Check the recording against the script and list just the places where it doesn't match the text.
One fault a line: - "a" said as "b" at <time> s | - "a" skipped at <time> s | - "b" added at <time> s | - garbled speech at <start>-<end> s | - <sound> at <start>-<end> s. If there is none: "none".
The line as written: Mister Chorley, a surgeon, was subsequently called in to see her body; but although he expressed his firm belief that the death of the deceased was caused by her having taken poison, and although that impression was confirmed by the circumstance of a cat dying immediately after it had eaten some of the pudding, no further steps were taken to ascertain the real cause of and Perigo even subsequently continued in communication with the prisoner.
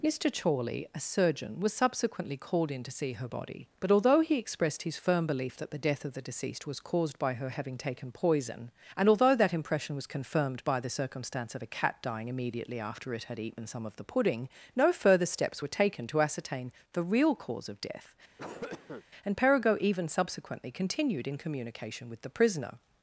- "death" added at 17.8 s
- cough at 18.4-19.0 s